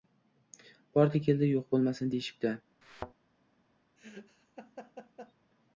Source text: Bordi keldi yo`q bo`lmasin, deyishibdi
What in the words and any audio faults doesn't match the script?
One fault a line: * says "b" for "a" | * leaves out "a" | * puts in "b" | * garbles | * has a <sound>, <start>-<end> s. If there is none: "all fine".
* has a thud, 2.8-3.1 s
* has a laugh, 4.0-5.3 s